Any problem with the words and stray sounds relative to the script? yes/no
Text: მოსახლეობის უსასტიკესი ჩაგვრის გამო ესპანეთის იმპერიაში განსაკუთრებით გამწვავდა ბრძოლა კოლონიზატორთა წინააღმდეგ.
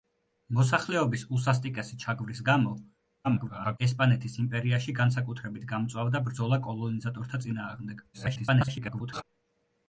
yes